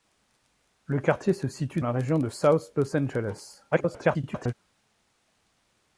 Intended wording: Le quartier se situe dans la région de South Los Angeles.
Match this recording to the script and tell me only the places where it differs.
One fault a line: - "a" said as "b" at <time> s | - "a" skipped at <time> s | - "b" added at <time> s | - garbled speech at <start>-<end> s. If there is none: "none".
- "dans" skipped at 1.8 s
- garbled speech at 3.7-4.5 s